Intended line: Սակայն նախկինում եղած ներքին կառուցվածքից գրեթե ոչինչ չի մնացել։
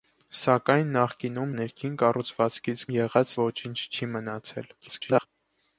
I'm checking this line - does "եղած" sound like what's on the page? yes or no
no